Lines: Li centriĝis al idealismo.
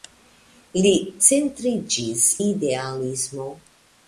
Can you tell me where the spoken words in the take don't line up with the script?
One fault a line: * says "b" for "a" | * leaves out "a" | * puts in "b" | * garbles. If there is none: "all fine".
* leaves out "al"